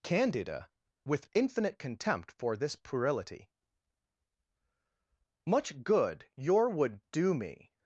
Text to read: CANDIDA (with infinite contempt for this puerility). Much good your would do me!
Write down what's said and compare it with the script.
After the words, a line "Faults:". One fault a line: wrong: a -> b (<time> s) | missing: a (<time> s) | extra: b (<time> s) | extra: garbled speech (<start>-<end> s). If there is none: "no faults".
CANDIDA (with infinite contempt for this puerility). Much good your would do me!
Faults:
no faults